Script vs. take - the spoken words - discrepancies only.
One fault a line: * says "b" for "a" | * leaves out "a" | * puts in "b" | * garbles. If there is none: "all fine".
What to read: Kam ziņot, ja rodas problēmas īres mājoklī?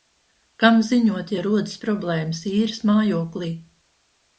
all fine